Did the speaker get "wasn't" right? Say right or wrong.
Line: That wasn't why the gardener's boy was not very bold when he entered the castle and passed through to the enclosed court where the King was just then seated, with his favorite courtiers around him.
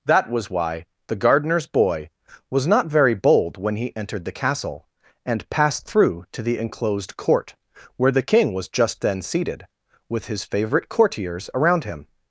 wrong